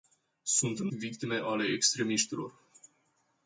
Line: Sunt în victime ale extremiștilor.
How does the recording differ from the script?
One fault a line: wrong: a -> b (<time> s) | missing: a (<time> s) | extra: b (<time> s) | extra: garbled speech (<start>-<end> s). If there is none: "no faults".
no faults